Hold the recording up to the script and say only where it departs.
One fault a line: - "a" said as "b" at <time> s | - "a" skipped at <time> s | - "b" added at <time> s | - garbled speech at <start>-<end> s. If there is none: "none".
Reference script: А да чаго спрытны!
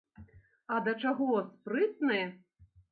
none